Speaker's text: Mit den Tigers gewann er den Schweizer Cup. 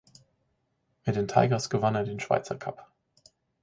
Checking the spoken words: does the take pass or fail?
pass